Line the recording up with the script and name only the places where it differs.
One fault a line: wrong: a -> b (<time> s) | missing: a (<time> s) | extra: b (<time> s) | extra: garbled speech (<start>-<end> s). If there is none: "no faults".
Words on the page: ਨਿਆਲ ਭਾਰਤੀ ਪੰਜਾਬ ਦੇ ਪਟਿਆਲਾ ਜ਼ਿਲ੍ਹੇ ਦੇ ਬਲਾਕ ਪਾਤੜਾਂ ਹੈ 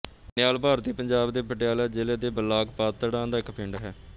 extra: ਦਾ ਇੱਕ ਪਿੰਡ (3.3 s)